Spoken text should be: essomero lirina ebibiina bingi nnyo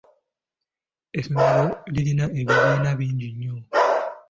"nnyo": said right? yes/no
yes